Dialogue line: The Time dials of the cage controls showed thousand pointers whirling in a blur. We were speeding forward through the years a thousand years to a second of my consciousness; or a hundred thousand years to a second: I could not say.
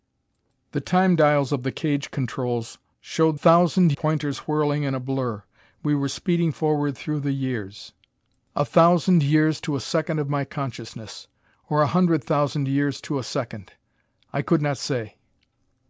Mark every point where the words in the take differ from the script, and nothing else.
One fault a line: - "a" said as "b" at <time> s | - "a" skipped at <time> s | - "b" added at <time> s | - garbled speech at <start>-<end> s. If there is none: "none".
none